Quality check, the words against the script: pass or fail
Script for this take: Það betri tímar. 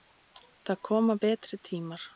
fail